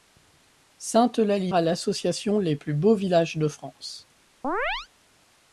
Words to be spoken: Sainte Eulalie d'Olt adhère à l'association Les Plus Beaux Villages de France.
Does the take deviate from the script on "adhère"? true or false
true